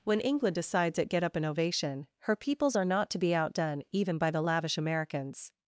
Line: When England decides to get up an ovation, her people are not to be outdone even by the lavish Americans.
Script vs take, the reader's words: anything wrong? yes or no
yes